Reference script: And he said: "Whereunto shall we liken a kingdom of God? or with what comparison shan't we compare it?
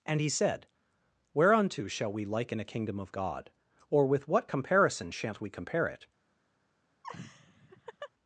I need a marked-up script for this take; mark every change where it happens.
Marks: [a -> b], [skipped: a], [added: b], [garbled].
And he said: "Whereunto shall we liken a kingdom of God? or with what comparison shan't we compare it?